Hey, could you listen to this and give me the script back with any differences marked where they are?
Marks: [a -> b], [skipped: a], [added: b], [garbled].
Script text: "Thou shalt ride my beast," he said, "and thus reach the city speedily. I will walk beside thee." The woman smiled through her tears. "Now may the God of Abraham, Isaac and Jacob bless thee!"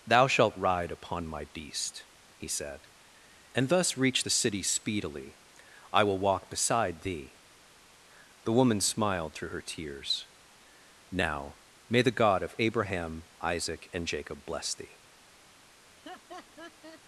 "Thou shalt ride [added: upon] my beast," he said, "and thus reach the city speedily. I will walk beside thee." The woman smiled through her tears. "Now may the God of Abraham, Isaac and Jacob bless thee!"